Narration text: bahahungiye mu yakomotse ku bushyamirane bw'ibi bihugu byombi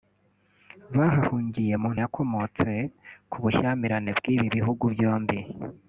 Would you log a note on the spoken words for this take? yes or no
no